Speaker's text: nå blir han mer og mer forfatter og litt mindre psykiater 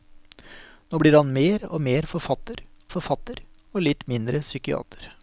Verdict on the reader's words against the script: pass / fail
fail